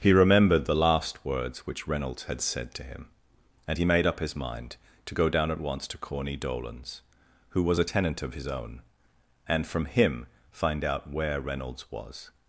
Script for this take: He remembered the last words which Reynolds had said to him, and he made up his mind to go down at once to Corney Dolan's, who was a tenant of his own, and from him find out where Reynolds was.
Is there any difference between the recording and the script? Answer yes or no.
no